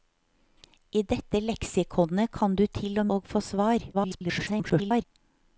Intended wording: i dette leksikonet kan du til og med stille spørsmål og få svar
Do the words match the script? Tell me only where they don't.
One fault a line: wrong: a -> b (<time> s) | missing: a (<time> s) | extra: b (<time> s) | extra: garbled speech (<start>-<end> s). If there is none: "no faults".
missing: med stille spørsmål (3.1 s)
extra: garbled speech (3.9-5.0 s)